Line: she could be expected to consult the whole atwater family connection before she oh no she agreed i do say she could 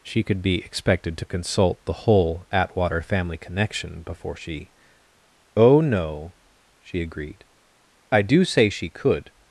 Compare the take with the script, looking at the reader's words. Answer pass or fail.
pass